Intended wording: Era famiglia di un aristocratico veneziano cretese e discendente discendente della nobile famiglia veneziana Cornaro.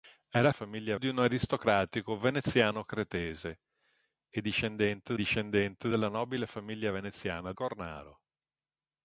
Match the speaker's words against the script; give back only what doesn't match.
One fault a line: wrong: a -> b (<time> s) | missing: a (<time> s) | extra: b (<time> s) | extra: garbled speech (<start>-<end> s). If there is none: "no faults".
no faults